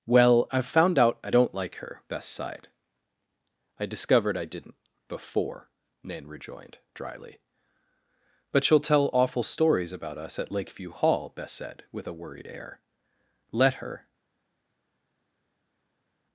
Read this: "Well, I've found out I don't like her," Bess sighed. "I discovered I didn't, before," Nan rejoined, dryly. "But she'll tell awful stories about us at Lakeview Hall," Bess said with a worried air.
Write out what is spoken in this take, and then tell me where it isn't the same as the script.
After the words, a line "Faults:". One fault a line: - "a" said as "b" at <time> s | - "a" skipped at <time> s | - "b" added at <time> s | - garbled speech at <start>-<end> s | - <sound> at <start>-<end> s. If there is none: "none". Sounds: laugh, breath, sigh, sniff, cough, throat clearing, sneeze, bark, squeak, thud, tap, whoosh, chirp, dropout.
"Well, I've found out I don't like her," Bess sighed. "I discovered I didn't, before," Nan rejoined, dryly. "But she'll tell awful stories about us at Lakeview Hall," Bess said with a worried air. "Let her
Faults:
- "Let her" added at 13.5 s